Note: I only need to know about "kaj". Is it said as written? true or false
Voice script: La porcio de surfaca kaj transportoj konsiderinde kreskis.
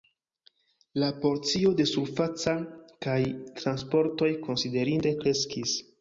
true